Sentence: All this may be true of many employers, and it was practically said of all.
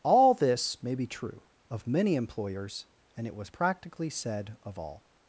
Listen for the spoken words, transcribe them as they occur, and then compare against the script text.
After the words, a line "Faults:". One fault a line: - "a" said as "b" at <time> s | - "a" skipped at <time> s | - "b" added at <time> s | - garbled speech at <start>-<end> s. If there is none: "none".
All this may be true of many employers, and it was practically said of all.
Faults:
none